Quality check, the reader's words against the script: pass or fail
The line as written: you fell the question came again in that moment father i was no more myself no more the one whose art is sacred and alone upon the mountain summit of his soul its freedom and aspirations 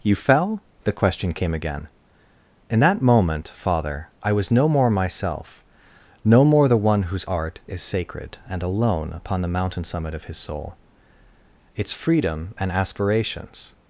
pass